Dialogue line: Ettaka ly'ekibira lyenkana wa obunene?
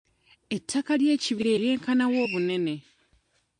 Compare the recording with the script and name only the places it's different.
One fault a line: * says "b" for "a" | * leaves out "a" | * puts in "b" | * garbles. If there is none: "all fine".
all fine